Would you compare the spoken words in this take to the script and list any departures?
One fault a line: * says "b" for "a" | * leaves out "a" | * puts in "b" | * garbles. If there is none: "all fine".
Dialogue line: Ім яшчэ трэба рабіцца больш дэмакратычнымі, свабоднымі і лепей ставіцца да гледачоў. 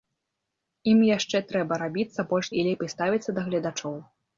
* leaves out "дэмакратычнымі свабоднымі"